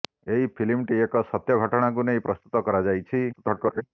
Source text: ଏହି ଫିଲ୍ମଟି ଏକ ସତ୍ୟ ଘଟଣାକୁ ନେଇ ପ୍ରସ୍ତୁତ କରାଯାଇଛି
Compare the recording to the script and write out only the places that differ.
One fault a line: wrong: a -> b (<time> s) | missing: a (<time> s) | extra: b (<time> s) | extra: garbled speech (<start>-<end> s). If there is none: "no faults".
extra: garbled speech (3.3-3.8 s)